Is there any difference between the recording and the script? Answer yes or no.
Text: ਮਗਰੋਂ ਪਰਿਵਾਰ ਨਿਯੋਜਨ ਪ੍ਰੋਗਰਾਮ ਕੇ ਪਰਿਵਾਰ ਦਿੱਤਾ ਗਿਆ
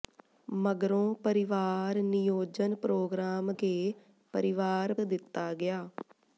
no